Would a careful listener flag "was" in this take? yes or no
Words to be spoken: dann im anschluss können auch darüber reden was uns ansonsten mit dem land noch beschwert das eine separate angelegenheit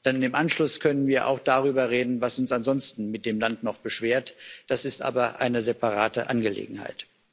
no